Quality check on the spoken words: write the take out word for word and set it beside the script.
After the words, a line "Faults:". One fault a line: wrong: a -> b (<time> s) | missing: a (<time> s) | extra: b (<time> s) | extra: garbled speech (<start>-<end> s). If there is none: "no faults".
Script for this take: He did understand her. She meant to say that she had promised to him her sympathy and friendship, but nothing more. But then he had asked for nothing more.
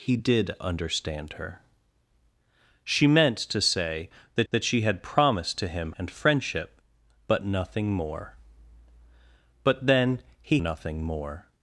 He did understand her. She meant to say that that she had promised to him and friendship, but nothing more. But then he nothing more.
Faults:
extra: that (4.5 s)
missing: her sympathy (5.9 s)
missing: had asked for (10.6 s)